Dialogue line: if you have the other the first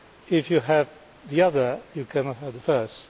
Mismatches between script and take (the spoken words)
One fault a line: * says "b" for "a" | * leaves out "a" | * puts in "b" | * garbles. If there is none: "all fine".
* puts in "you cannot have"